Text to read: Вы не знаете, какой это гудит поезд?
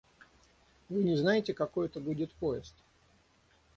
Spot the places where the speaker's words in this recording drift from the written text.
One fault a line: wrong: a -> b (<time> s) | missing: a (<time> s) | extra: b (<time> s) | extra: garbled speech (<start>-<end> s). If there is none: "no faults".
no faults